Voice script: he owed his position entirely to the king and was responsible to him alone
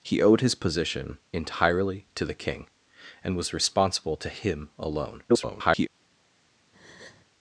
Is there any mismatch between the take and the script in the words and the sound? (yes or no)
yes